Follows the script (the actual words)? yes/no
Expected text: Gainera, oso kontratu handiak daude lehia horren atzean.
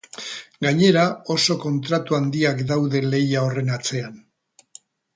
yes